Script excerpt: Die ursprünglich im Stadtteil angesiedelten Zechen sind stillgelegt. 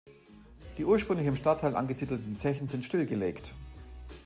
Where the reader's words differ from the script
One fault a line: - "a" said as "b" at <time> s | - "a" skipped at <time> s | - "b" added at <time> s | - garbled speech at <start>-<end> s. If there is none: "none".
none